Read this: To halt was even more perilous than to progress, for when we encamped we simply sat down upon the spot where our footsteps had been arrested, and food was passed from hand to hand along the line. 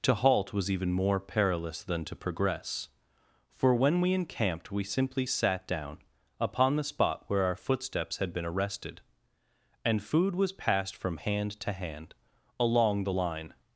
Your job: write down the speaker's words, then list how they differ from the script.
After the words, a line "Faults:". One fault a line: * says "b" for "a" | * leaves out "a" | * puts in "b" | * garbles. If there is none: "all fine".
To halt was even more perilous than to progress, for when we encamped we simply sat down upon the spot where our footsteps had been arrested, and food was passed from hand to hand along the line.
Faults:
all fine